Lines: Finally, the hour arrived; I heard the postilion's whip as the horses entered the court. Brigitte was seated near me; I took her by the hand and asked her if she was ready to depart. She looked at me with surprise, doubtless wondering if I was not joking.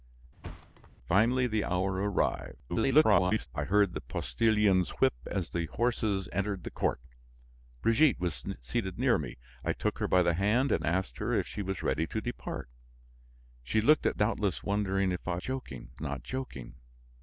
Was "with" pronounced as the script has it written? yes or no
no